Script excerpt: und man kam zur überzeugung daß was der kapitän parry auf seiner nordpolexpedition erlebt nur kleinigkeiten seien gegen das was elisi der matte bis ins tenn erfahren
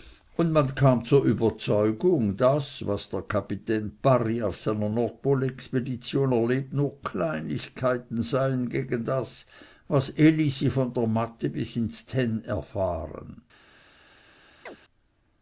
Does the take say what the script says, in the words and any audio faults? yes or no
no